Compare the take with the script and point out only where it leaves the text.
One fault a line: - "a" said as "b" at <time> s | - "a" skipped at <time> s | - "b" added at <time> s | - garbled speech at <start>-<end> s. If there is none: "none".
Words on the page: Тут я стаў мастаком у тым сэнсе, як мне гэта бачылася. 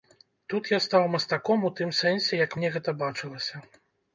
none